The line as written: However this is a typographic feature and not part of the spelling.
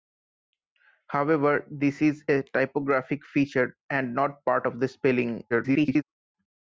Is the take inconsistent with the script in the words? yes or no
yes